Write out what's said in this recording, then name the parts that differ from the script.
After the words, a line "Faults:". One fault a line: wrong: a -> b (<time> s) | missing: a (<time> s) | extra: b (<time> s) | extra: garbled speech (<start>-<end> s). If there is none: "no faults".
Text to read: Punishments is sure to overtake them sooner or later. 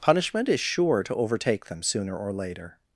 Punishment is sure to overtake them sooner or later.
Faults:
wrong: Punishments -> Punishment (0.0 s)